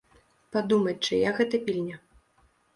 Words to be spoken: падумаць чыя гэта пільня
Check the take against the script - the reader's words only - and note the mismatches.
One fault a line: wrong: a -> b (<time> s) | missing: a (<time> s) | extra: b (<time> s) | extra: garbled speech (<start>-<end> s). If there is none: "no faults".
no faults